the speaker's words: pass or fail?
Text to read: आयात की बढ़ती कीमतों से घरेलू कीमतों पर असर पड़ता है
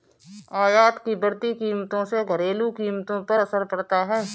pass